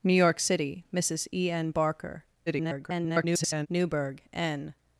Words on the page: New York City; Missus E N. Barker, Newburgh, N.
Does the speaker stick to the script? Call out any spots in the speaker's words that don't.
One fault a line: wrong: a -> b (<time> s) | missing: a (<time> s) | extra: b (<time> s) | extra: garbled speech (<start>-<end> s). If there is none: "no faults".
extra: garbled speech (2.5-3.7 s)